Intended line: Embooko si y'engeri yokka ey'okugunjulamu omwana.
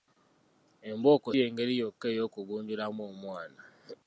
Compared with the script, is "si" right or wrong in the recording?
wrong